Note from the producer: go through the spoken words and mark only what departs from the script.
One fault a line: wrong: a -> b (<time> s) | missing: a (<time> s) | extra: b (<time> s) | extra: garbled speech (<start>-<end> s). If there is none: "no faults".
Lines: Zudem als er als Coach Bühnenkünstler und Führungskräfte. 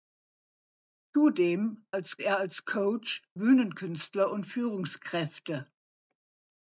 no faults